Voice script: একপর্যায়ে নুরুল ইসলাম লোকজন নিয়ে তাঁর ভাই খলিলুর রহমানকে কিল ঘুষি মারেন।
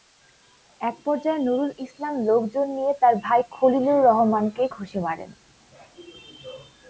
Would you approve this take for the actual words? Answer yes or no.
no